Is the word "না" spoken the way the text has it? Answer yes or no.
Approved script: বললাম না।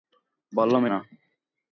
yes